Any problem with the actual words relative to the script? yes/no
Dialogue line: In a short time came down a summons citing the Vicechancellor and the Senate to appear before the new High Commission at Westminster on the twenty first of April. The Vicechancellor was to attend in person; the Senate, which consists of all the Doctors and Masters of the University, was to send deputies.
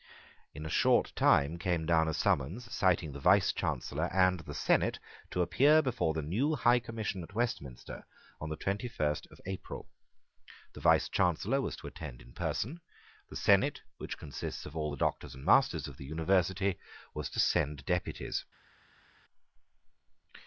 no